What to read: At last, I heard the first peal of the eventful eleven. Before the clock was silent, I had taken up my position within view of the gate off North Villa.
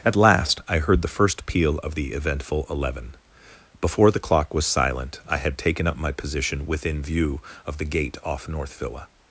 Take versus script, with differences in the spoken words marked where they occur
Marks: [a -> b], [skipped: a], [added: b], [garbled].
At last, I heard the first peal of the eventful eleven. Before the clock was silent, I had taken up my position within view of the gate off North Villa.